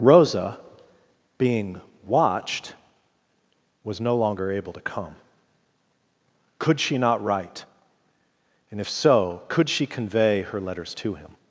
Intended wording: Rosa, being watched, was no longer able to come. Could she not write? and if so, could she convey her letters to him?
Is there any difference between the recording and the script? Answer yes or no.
no